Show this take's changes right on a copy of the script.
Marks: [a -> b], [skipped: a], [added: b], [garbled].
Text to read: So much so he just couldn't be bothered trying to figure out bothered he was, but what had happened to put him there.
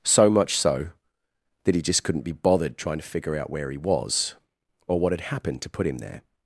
So much so [added: that] he just couldn't be bothered trying to figure out [bothered -> where] he was, [but -> or] what had happened to put him there.